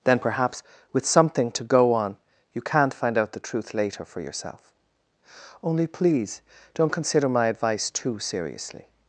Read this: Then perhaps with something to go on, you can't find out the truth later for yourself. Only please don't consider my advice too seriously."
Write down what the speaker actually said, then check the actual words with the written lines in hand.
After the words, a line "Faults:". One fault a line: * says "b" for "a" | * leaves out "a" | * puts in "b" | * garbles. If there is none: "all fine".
Then perhaps with something to go on, you can't find out the truth later for yourself. Only please don't consider my advice too seriously."
Faults:
all fine